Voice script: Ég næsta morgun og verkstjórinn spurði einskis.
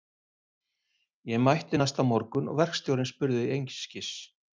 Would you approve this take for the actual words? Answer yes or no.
no